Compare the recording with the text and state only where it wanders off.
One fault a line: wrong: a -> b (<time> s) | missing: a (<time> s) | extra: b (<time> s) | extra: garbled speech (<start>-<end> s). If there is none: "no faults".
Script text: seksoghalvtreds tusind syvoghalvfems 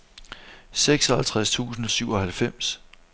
no faults